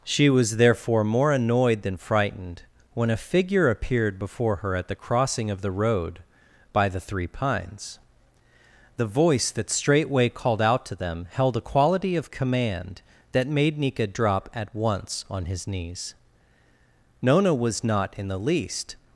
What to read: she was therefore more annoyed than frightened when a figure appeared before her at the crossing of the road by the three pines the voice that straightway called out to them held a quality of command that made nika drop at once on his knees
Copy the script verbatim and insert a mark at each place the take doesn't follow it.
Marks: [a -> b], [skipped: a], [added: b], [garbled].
she was therefore more annoyed than frightened when a figure appeared before her at the crossing of the road by the three pines the voice that straightway called out to them held a quality of command that made nika drop at once on his knees [added: nona was not in the least]